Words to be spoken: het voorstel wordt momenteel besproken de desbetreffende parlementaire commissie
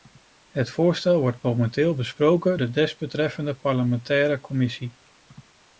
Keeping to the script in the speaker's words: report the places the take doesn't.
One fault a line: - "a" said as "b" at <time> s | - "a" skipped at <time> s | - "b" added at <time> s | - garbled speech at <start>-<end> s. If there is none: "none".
none